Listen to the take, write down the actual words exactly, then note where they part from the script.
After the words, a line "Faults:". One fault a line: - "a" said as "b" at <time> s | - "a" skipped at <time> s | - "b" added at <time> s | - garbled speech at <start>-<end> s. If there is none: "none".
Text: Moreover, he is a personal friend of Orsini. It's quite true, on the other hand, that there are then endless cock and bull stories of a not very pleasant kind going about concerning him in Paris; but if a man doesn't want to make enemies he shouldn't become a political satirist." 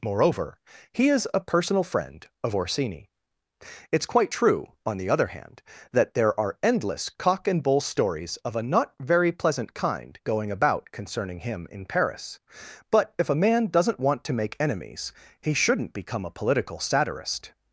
Moreover, he is a personal friend of Orsini. It's quite true, on the other hand, that there are endless cock and bull stories of a not very pleasant kind going about concerning him in Paris; but if a man doesn't want to make enemies he shouldn't become a political satirist."
Faults:
- "then" skipped at 6.6 s